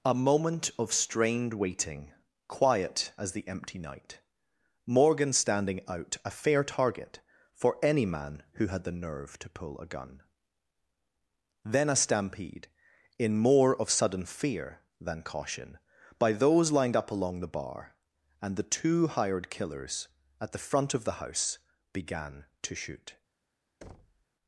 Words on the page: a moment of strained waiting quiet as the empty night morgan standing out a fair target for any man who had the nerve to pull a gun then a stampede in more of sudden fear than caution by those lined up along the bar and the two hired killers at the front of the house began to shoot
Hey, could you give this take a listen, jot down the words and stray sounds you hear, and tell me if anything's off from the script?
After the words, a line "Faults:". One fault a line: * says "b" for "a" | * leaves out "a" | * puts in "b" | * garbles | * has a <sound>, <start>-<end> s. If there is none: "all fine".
a moment of strained waiting quiet as the empty night morgan standing out a fair target for any man who had the nerve to pull a gun then a stampede in more of sudden fear than caution by those lined up along the bar and the two hired killers at the front of the house began to shoot
Faults:
* has a thud, 23.8-24.3 s